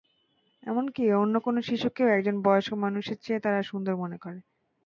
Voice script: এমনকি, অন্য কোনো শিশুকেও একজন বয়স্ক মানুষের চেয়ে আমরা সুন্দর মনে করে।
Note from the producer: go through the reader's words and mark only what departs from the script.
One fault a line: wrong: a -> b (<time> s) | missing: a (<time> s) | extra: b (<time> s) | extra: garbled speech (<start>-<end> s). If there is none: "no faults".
wrong: আমরা -> তারা (3.4 s)